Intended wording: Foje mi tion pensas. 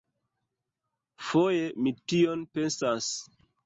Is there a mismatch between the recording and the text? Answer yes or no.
no